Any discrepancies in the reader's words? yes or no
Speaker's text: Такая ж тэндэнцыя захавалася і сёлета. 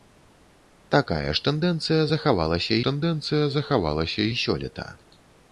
yes